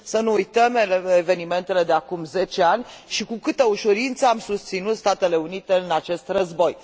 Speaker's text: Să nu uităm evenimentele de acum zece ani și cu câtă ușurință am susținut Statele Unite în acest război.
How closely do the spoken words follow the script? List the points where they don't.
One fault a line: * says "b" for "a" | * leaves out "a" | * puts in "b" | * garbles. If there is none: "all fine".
all fine